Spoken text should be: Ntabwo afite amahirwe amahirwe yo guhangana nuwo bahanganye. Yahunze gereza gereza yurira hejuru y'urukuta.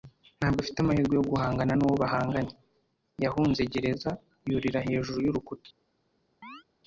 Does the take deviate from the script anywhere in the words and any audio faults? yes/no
yes